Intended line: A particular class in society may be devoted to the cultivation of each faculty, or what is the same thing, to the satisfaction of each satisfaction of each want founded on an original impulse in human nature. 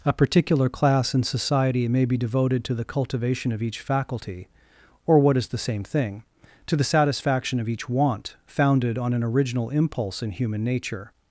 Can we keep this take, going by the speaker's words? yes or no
no